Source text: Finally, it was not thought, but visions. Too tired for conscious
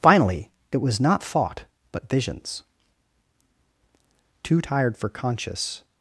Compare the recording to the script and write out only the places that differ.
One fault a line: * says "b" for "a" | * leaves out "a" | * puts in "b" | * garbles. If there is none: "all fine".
all fine